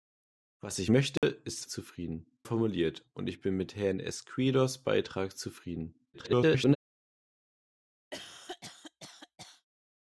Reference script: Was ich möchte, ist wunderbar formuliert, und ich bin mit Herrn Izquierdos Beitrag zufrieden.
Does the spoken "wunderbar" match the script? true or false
false